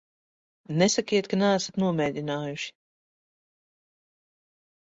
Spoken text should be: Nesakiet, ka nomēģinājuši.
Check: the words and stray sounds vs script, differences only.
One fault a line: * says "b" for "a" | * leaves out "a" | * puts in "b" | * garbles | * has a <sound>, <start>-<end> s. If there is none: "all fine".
* puts in "neesat"